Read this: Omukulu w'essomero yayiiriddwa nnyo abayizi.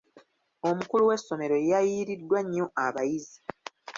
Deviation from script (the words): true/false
false